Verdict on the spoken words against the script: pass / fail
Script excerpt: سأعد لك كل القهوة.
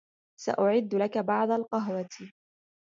fail